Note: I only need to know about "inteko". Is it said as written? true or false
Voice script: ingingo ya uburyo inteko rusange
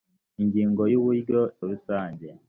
false